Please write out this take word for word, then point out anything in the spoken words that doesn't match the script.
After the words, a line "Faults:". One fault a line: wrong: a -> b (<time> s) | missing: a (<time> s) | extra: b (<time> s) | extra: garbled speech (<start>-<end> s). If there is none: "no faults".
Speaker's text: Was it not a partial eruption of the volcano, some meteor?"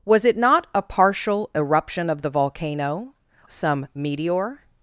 Was it not a partial eruption of the volcano, some meteor?"
Faults:
no faults